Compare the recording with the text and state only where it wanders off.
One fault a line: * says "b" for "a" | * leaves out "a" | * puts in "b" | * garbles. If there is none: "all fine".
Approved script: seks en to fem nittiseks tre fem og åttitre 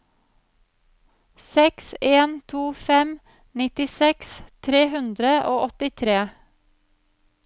* says "hundre" for "fem"